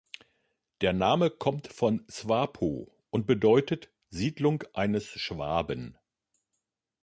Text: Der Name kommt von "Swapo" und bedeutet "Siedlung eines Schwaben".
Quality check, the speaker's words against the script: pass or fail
pass